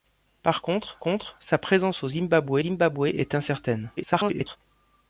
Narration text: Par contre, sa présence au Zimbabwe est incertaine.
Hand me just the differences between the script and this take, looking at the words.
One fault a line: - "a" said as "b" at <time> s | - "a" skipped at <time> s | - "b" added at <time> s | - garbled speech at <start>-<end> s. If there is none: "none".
- "contre" added at 1.0 s
- "Zimbabwe" added at 2.6 s
- garbled speech at 4.0-4.6 s